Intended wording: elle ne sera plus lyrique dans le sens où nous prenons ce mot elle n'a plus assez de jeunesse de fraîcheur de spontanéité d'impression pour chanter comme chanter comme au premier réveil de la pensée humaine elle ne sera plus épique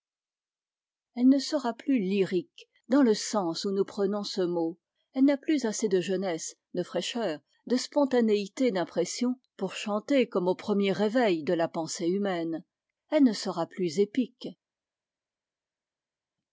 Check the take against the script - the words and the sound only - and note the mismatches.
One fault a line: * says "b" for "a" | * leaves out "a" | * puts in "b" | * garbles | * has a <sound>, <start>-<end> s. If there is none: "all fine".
* leaves out "chanter comme"